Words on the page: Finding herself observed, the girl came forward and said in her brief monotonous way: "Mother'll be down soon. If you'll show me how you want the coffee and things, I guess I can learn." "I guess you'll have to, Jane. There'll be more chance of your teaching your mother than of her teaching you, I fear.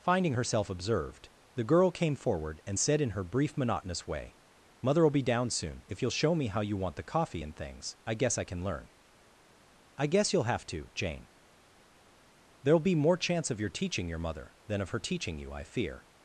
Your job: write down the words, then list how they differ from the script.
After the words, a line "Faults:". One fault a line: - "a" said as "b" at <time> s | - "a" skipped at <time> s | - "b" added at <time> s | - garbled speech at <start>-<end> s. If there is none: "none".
Finding herself observed, the girl came forward and said in her brief monotonous way: "Mother'll be down soon. If you'll show me how you want the coffee and things, I guess I can learn." "I guess you'll have to, Jane. There'll be more chance of your teaching your mother than of her teaching you, I fear.
Faults:
none